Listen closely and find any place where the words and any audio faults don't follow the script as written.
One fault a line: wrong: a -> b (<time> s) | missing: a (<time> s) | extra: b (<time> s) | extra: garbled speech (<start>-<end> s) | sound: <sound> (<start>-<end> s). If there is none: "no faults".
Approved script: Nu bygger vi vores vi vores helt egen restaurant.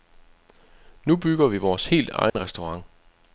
missing: vi vores (1.9 s)
sound: dropout (2.3-2.3 s)